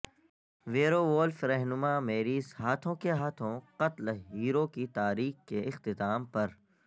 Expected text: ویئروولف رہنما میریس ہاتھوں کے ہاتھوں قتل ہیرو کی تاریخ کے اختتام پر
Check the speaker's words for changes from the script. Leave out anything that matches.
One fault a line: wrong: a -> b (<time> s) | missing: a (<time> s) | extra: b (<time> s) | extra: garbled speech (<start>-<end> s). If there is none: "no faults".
no faults